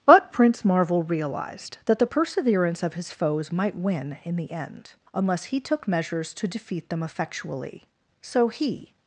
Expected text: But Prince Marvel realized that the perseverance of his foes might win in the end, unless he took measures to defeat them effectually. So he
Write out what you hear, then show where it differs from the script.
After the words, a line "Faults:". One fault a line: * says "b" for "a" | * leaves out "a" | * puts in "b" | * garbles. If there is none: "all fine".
But Prince Marvel realized that the perseverance of his foes might win in the end, unless he took measures to defeat them effectually. So he
Faults:
all fine